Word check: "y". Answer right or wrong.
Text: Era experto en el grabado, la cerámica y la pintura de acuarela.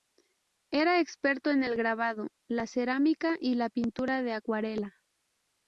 right